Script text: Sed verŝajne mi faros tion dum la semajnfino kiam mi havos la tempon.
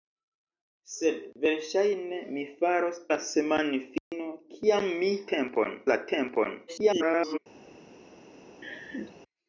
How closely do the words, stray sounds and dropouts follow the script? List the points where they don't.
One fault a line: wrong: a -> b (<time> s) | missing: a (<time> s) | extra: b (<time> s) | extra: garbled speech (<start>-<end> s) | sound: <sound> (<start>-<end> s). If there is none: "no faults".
missing: tion dum (3.0 s)
sound: dropout (4.0-4.1 s)
wrong: havos -> tempon (5.4 s)
extra: garbled speech (6.7-7.4 s)
sound: laugh (8.6-9.2 s)